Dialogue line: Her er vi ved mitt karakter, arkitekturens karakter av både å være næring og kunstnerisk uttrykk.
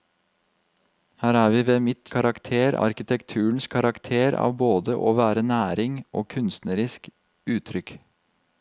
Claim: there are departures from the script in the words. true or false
false